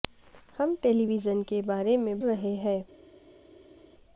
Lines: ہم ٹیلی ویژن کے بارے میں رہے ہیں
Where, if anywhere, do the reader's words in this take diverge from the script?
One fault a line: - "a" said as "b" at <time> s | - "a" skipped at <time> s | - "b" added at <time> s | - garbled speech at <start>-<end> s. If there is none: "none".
none